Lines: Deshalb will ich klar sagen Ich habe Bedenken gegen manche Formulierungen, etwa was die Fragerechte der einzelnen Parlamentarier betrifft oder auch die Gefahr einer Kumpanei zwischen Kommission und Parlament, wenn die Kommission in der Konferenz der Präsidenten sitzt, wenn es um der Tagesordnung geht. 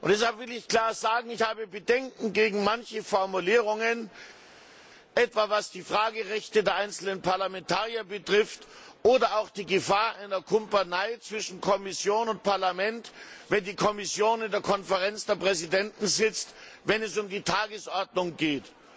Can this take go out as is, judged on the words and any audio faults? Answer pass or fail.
fail